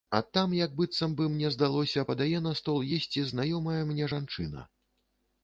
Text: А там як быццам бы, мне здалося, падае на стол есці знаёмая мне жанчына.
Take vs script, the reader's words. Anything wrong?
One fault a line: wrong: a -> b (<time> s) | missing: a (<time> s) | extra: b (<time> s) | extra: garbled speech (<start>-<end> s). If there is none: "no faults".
no faults